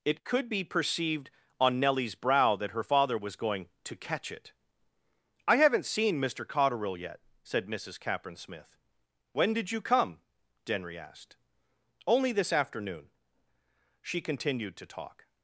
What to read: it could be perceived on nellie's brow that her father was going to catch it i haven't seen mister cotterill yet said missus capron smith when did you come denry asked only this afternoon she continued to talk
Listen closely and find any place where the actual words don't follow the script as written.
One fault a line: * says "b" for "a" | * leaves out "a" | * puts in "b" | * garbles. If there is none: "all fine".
all fine